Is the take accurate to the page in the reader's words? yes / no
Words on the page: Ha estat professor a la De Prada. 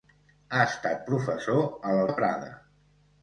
yes